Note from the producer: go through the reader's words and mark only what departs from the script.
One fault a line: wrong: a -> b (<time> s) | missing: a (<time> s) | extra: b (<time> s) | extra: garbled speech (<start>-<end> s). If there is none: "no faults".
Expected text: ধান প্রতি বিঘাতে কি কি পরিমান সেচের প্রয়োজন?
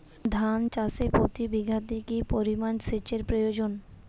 extra: চাষে (0.7 s)
missing: কি (2.2 s)